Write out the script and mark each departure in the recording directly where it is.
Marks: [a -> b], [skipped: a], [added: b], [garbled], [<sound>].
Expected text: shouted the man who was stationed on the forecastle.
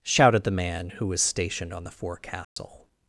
shouted the man who was stationed on the forecastle. [dropout]